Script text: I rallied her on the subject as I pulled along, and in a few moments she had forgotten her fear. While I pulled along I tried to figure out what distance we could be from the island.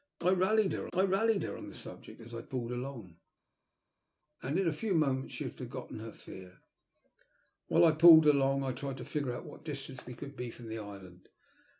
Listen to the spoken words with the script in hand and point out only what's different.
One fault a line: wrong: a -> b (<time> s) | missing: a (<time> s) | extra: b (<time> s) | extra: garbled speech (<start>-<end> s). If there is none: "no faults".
extra: I rallied her (0.9 s)